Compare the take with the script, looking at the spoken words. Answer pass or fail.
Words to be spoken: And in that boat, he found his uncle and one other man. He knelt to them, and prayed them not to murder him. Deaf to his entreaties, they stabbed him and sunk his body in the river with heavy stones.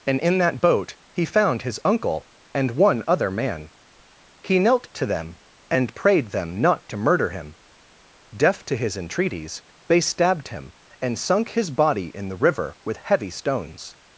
pass